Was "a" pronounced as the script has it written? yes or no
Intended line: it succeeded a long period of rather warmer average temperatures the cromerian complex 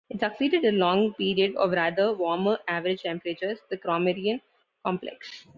yes